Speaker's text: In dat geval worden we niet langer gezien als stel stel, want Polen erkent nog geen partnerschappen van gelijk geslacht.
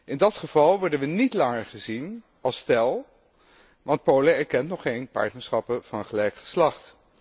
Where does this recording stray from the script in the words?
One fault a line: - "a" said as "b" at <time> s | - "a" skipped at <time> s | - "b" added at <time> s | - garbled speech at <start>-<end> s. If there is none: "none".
- "stel" skipped at 3.0 s